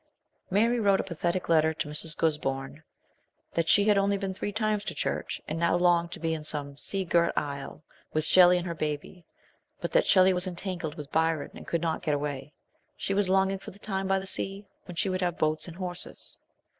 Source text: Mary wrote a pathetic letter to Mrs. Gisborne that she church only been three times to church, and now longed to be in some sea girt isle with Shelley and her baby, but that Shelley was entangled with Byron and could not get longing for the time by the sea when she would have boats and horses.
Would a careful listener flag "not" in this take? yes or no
no